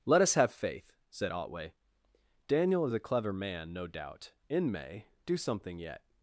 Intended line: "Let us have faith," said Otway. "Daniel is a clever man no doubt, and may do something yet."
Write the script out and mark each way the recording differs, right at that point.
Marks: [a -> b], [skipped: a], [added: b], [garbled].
"Let us have faith," said Otway. "Daniel is a clever man no doubt, [and -> in] may do something yet."